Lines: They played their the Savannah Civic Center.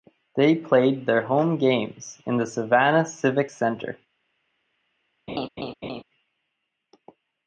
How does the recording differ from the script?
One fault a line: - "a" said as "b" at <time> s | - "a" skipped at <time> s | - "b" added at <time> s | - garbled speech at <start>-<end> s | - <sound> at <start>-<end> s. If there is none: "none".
- "home games in" added at 1.3 s
- laugh at 5.3-6.0 s